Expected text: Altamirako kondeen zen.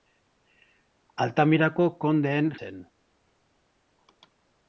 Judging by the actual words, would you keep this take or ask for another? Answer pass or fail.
pass